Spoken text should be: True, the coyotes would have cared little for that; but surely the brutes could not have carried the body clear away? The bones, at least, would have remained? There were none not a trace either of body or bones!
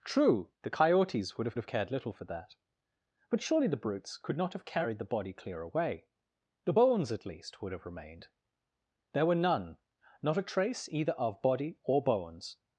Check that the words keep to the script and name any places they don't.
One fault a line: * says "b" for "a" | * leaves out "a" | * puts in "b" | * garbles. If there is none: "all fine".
* puts in "have"